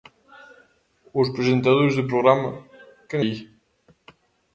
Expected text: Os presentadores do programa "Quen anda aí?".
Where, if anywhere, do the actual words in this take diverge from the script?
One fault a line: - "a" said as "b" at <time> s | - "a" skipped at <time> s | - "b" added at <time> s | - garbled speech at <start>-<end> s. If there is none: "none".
- "anda" skipped at 3.2 s